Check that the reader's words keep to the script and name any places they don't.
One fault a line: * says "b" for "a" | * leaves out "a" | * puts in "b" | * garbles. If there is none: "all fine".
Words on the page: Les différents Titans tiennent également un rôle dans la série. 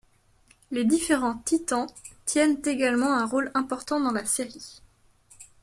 * puts in "important"